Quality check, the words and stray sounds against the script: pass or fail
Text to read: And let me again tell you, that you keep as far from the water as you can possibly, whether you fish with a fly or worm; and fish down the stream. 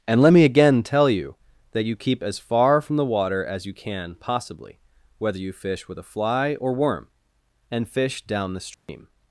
fail